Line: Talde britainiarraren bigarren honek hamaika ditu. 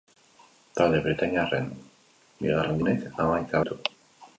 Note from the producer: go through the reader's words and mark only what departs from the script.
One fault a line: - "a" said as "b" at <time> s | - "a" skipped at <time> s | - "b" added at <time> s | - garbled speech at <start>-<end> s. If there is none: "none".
none